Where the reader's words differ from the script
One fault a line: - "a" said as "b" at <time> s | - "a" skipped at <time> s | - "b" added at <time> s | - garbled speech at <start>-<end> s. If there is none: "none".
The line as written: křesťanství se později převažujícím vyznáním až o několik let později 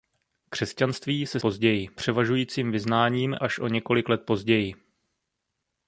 none